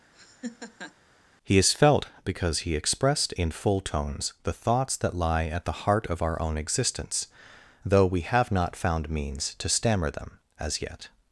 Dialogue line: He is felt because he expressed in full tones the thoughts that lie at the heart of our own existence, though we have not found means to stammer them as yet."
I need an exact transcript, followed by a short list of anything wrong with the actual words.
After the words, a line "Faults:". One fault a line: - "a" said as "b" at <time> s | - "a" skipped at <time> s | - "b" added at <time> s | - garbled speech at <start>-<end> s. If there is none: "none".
He is felt because he expressed in full tones the thoughts that lie at the heart of our own existence, though we have not found means to stammer them as yet."
Faults:
none